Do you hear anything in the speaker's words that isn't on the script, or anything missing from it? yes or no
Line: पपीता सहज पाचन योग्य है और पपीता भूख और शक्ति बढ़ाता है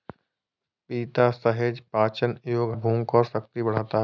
yes